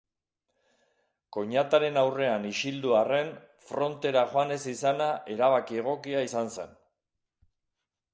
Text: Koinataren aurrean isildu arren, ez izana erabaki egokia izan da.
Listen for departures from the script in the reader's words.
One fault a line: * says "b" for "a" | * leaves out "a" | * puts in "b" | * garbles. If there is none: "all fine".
* puts in "frontera joan"
* says "zen" for "da"